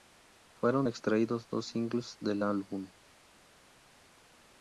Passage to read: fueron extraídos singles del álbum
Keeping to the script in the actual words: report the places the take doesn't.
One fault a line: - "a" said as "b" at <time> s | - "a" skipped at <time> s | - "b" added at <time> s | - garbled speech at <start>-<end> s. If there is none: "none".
- "dos" added at 1.5 s